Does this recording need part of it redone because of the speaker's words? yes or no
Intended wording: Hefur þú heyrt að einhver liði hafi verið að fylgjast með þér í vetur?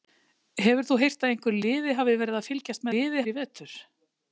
yes